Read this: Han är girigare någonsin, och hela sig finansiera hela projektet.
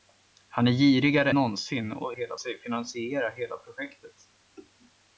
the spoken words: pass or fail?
pass